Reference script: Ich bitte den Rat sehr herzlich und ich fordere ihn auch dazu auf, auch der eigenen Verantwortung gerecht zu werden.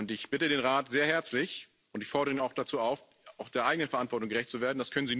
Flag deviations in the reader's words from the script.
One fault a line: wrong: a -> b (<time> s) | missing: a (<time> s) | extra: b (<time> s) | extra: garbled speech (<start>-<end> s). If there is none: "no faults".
no faults